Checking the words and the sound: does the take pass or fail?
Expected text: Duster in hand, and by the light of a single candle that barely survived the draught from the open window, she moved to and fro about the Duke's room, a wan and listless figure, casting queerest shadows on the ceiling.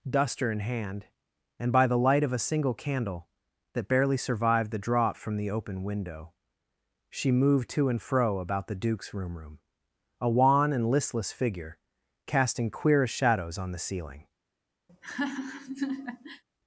fail